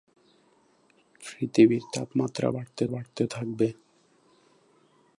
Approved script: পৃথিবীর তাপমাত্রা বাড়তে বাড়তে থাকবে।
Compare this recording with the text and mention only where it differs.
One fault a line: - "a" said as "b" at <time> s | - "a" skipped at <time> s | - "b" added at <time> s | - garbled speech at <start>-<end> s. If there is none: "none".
none